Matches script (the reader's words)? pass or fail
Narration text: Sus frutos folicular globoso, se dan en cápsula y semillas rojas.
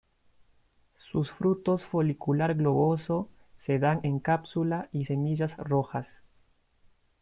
pass